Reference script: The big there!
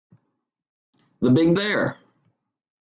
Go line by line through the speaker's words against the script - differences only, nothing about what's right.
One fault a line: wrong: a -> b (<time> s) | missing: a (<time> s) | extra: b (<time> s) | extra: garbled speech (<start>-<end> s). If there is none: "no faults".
no faults